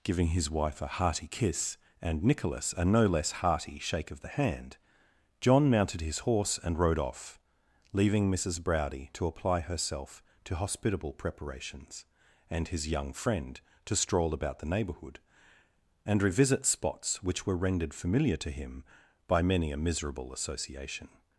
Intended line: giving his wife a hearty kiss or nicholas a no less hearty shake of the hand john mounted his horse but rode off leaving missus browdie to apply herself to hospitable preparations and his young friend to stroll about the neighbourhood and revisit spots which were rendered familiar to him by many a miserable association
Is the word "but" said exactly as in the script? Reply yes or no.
no